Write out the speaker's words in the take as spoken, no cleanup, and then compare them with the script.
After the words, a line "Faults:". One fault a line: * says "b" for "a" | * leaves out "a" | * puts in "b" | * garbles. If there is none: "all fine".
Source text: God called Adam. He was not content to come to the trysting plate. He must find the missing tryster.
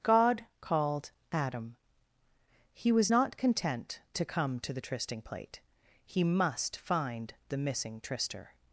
God called Adam. He was not content to come to the trysting plate. He must find the missing tryster.
Faults:
all fine